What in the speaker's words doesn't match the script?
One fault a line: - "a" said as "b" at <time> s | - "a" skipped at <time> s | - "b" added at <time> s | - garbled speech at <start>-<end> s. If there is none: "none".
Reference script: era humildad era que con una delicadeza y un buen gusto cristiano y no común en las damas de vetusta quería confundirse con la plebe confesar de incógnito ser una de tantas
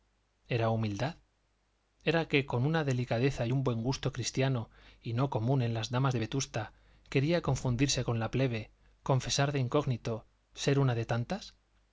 none